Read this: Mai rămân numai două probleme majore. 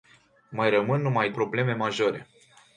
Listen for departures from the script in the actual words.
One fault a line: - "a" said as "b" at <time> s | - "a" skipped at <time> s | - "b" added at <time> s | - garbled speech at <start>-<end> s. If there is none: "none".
- "două" skipped at 1.3 s